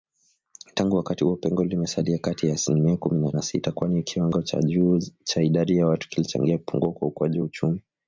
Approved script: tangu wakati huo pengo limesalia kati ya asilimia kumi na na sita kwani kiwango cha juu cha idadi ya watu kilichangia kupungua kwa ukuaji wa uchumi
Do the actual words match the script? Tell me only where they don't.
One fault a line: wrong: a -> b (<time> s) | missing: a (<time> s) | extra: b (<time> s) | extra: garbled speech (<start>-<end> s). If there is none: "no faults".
no faults